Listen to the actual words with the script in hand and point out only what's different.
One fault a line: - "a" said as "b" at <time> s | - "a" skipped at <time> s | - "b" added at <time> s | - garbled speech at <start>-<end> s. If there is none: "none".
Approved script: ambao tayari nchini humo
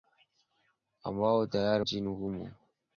none